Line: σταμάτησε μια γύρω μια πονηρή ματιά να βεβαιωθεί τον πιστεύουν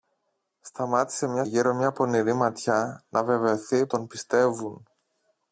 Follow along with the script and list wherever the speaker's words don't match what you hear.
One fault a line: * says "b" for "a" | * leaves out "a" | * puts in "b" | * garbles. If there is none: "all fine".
all fine